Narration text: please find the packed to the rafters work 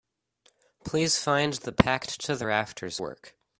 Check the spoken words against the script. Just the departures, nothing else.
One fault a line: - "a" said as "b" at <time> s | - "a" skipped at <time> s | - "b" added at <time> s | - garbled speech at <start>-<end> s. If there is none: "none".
none